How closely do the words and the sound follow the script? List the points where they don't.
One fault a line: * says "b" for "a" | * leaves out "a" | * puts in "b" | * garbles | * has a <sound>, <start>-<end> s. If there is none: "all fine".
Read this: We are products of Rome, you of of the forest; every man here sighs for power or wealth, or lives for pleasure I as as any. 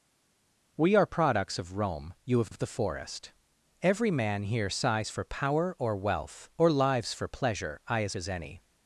all fine